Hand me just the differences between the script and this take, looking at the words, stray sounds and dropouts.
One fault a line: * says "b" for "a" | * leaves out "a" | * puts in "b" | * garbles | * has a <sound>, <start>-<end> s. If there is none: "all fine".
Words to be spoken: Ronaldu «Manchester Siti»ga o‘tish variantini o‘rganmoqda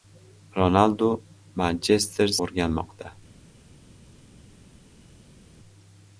* leaves out "Siti»ga o‘tish variantini"